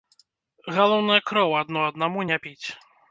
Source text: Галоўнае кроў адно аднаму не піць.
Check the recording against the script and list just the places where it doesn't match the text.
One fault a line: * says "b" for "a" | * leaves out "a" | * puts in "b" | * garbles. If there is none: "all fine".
all fine